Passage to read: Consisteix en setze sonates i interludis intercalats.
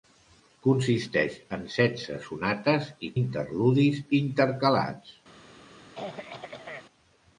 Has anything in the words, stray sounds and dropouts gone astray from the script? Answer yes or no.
yes